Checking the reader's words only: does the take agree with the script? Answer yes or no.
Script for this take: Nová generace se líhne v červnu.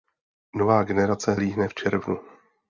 no